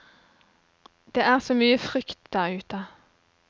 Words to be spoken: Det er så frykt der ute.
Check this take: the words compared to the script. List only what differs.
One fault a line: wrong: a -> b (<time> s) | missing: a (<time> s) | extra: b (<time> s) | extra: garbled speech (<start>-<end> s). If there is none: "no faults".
extra: mye (1.5 s)